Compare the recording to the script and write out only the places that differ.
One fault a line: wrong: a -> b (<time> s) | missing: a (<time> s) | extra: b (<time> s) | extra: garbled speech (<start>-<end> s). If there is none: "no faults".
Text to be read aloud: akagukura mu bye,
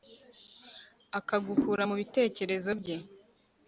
extra: bitekerezo (2.0 s)